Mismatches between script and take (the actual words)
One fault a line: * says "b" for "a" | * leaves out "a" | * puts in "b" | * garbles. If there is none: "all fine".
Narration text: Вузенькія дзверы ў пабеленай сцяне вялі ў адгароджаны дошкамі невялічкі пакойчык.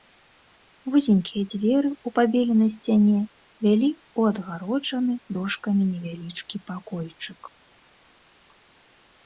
all fine